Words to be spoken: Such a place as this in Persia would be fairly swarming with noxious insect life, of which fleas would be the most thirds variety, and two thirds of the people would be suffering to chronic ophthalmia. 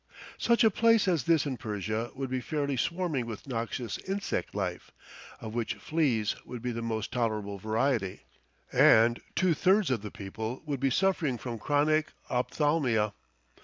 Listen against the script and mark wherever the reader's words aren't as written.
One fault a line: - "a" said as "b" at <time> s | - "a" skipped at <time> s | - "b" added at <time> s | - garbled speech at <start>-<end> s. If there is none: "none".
- "thirds" said as "tolerable" at 7.1 s
- "to" said as "from" at 11.4 s